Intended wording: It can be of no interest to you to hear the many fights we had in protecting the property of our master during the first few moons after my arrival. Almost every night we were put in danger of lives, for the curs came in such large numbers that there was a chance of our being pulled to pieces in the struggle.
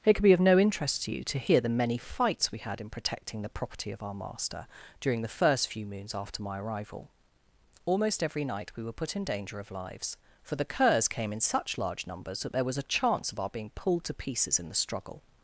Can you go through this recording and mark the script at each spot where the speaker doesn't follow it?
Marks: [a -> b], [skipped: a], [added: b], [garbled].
It [can -> could] be of no interest to you to hear the many fights we had in protecting the property of our master during the first few moons after my arrival. Almost every night we were put in danger of lives, for the curs came in such large numbers that there was a chance of our being pulled to pieces in the struggle.